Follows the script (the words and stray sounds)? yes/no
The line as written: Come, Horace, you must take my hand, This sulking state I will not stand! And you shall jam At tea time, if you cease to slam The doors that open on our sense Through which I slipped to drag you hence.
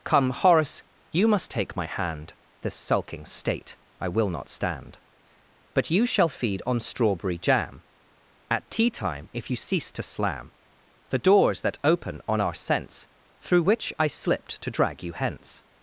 no